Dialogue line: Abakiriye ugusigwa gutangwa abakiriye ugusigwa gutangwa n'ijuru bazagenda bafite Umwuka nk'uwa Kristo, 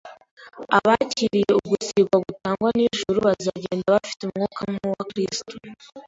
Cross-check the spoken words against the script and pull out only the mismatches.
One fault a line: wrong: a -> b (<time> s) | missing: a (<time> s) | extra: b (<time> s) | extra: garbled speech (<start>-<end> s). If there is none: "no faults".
missing: abakiriye ugusigwa gutangwa (2.7 s)